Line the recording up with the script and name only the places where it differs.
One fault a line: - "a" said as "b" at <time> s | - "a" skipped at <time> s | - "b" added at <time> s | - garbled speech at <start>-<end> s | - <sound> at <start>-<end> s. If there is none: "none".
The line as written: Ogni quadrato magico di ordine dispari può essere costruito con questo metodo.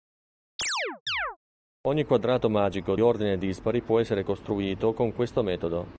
- chirp at 0.6-1.4 s
- "di" skipped at 2.9 s